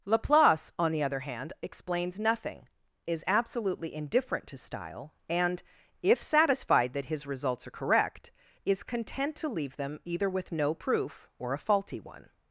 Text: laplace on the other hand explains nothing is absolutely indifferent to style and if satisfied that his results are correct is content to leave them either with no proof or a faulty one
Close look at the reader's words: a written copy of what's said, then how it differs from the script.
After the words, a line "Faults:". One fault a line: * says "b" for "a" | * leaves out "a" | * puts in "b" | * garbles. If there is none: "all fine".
laplace on the other hand explains nothing is absolutely indifferent to style and if satisfied that his results are correct is content to leave them either with no proof or a faulty one
Faults:
all fine